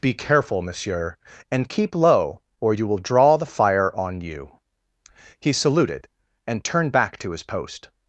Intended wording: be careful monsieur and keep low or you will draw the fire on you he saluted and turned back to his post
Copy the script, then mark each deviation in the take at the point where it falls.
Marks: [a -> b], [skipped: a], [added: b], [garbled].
be careful monsieur and keep low or you will draw the fire on you he saluted and turned back to his post